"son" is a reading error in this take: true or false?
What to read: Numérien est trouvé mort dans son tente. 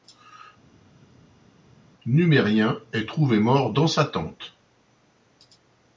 true